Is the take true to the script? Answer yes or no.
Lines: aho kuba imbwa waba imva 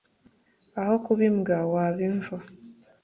yes